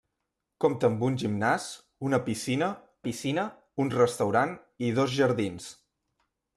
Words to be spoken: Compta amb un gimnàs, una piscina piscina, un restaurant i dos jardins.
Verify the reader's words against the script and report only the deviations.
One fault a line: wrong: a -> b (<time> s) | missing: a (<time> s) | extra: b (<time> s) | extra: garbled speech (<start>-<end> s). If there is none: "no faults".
no faults